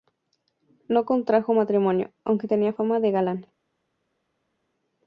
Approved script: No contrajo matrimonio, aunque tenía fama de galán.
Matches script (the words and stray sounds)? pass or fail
pass